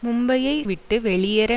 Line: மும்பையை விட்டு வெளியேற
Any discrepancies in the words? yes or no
no